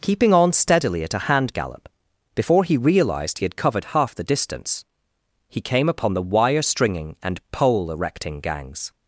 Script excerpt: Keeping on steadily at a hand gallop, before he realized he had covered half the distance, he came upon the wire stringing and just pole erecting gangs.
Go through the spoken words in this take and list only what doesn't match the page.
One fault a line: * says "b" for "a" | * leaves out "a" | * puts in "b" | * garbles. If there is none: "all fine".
* leaves out "just"